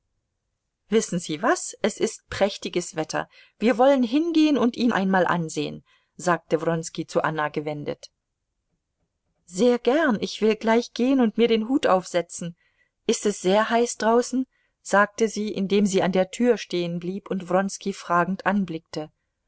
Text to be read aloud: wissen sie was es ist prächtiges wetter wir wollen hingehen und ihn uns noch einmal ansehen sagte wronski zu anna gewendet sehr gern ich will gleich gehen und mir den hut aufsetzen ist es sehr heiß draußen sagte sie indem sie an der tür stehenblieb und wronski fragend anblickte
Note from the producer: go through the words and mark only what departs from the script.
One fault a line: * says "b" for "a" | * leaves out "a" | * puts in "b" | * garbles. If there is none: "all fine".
* leaves out "uns noch"